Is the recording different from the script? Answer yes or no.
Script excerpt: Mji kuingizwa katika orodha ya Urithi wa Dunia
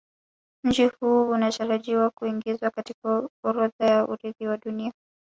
yes